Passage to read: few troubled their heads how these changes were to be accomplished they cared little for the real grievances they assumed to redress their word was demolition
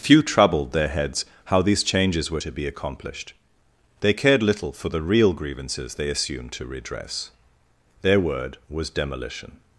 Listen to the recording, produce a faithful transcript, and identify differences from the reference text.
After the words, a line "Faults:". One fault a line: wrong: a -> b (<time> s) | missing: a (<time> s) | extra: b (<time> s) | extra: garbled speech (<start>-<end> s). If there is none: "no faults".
few troubled their heads how these changes were to be accomplished they cared little for the real grievances they assumed to redress their word was demolition
Faults:
no faults